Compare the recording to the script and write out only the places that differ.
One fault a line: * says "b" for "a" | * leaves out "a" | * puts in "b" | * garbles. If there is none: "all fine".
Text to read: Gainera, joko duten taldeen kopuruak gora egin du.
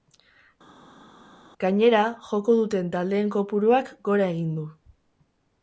all fine